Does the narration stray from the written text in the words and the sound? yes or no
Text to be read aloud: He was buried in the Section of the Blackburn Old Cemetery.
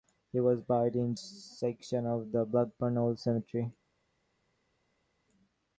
no